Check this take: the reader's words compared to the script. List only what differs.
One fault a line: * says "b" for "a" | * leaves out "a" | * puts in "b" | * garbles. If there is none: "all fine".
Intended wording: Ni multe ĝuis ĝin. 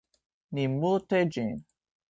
* leaves out "ĝuis"